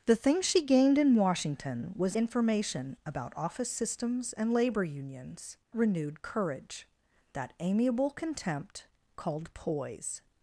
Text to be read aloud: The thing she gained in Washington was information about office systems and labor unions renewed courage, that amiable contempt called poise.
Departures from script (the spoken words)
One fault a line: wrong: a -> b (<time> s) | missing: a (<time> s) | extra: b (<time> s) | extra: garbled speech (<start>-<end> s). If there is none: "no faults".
no faults